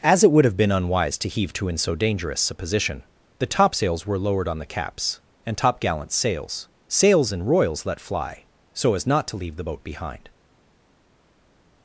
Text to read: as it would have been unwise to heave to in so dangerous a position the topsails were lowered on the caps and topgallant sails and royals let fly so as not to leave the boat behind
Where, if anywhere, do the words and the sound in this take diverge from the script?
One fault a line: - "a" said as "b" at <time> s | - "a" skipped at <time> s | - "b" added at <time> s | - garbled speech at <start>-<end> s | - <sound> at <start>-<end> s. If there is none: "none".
- "sails" added at 6.9 s